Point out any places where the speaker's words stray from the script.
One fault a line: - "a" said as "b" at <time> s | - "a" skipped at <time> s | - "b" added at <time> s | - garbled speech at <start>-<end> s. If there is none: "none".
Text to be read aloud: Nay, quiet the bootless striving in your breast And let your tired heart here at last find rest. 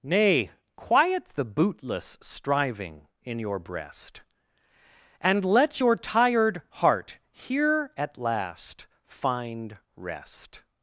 none